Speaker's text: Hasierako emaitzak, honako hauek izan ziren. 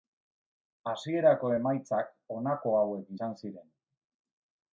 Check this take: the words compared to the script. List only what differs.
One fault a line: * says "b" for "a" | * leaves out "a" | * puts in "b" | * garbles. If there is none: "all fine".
all fine